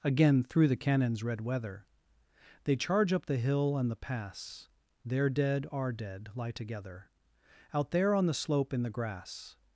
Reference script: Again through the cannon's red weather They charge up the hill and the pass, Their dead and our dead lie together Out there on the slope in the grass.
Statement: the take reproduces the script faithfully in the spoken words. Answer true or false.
false